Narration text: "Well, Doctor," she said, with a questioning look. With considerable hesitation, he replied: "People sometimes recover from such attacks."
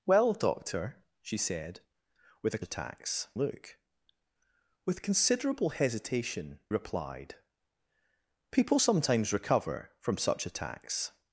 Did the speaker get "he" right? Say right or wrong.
wrong